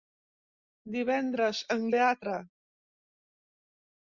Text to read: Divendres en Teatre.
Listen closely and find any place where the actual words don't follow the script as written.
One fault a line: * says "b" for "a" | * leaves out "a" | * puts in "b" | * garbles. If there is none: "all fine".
all fine